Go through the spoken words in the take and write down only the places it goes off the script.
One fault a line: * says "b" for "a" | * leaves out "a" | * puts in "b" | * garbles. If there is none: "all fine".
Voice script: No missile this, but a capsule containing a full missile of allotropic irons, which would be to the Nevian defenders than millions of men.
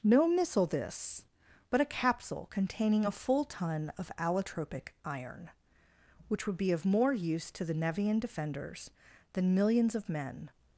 * says "ton" for "missile"
* says "iron" for "irons"
* puts in "of more use"